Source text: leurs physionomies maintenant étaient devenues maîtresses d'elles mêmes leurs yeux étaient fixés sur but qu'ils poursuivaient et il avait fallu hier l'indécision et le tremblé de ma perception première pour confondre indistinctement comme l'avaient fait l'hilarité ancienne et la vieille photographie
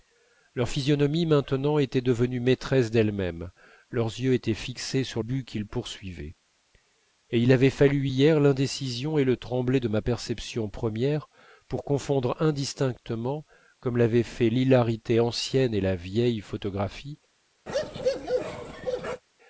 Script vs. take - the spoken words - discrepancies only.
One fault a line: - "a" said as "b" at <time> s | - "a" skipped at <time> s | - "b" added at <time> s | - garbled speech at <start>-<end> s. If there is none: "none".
none